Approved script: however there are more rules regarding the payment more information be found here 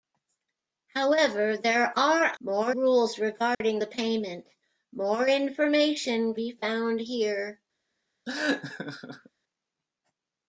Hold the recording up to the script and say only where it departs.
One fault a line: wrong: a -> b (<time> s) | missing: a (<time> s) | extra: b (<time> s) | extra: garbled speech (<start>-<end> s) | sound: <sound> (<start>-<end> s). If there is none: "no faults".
sound: dropout (3.5-3.6 s)
sound: laugh (8.3-9.3 s)